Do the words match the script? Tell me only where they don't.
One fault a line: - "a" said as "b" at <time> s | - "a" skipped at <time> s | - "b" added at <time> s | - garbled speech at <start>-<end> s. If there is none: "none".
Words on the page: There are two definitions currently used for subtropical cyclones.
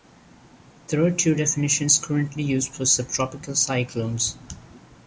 none